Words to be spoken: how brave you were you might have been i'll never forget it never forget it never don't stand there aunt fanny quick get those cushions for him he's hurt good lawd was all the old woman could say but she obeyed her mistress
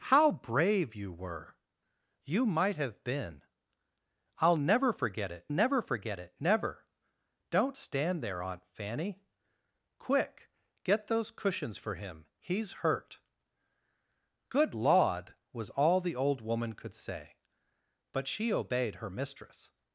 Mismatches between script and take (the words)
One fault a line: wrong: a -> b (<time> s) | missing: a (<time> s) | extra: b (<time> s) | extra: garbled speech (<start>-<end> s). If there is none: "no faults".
no faults